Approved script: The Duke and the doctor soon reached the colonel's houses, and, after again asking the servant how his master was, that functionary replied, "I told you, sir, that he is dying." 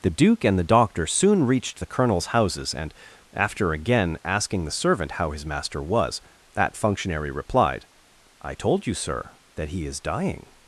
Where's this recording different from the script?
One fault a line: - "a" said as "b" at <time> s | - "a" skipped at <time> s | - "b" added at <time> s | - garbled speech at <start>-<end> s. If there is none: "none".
none